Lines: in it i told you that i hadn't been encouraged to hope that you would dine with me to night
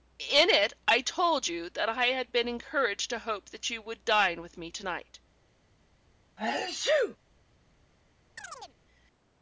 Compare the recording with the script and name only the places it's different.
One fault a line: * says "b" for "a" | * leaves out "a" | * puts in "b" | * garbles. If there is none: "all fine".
* says "had" for "hadn't"